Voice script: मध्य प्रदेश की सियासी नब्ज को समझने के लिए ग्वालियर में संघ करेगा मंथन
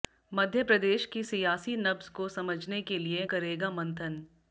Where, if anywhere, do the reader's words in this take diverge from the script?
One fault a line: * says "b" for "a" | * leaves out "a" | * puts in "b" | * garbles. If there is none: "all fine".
* leaves out "ग्वालियर में संघ"